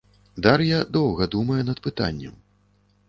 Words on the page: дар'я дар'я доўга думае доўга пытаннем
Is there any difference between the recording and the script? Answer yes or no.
yes